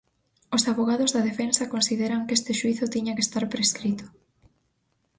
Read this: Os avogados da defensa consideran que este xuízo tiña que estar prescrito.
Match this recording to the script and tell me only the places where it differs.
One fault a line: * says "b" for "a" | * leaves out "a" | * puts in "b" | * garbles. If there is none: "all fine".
all fine